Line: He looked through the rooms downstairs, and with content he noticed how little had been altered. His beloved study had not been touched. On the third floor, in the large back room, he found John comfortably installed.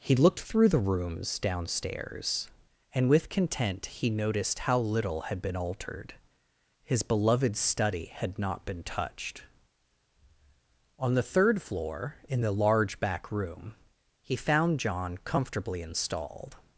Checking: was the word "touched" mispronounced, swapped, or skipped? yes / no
no